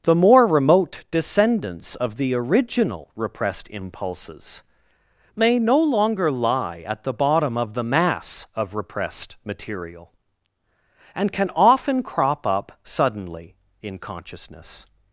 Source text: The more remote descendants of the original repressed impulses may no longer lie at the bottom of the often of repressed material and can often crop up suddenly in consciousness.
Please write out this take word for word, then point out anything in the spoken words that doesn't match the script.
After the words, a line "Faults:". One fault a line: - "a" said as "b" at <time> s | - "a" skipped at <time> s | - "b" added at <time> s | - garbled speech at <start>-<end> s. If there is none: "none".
The more remote descendants of the original repressed impulses may no longer lie at the bottom of the mass of repressed material and can often crop up suddenly in consciousness.
Faults:
- "often" said as "mass" at 7.8 s